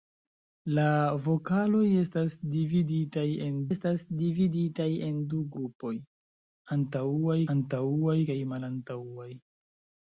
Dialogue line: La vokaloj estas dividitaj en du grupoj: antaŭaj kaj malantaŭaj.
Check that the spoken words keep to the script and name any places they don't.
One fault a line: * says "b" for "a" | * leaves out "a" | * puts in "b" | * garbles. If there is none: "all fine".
* puts in "estas dividitaj en"
* puts in "antaŭaj"